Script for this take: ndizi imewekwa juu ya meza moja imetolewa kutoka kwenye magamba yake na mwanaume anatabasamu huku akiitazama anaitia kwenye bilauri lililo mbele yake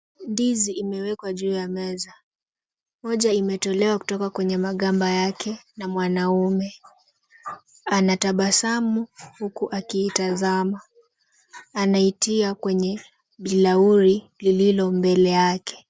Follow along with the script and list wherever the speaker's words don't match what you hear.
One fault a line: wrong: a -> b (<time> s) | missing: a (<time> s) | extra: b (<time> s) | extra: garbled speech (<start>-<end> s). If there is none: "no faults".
no faults